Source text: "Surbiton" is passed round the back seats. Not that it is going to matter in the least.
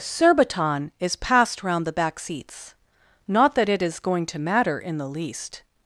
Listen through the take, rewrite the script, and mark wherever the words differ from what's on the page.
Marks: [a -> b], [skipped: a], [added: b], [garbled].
"Surbiton" is passed round the back seats. Not that it is going to matter in the least.